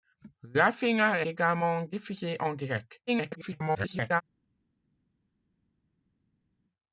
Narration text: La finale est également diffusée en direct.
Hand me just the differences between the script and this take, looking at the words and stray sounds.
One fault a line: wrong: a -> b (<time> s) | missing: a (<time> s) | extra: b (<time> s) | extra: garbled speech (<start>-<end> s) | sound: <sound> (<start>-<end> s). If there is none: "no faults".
missing: est (1.2 s)
extra: garbled speech (3.1-4.2 s)